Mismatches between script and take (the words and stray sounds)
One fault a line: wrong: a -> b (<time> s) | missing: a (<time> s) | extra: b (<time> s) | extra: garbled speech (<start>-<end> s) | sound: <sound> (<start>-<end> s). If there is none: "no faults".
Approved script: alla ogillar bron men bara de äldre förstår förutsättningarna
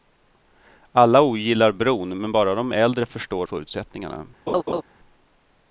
sound: laugh (4.5-4.8 s)